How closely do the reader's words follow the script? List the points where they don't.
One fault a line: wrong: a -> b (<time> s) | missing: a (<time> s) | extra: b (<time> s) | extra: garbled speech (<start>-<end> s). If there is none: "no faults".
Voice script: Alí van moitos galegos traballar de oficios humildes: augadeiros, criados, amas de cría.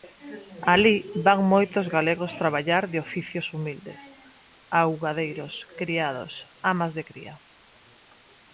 no faults